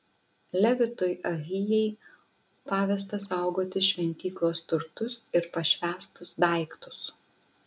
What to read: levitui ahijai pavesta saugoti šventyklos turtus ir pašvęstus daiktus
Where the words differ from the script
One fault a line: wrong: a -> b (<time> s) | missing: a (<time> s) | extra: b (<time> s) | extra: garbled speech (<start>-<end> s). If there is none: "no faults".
no faults